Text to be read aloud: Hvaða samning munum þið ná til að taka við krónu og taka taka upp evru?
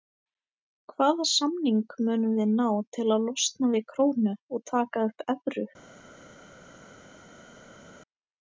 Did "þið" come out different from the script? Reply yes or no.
yes